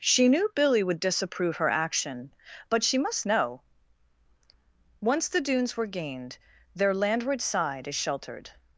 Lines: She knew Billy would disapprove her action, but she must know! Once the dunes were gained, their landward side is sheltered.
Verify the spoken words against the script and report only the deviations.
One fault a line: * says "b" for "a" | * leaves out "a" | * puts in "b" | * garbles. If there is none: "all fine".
all fine